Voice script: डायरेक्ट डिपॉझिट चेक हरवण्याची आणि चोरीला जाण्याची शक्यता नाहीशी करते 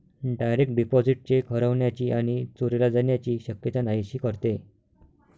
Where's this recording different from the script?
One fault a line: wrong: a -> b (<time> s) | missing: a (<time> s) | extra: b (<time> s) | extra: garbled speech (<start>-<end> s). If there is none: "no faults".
no faults